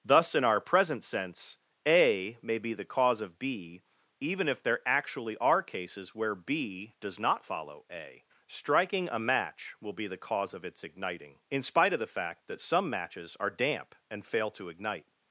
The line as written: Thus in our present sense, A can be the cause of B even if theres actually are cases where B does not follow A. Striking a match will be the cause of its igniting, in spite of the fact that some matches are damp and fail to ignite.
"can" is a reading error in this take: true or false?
true